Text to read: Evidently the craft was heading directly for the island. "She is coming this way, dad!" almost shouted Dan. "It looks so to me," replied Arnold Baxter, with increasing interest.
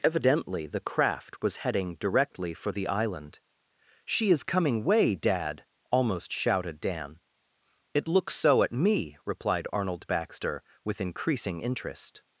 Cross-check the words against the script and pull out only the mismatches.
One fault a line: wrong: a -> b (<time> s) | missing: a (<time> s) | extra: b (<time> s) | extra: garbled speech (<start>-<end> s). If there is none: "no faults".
missing: this (4.8 s)
wrong: to -> at (8.6 s)